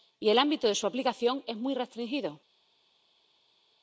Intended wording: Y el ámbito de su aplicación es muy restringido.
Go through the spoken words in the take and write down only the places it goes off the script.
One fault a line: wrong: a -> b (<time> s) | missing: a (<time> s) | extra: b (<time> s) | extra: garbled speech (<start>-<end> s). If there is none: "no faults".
no faults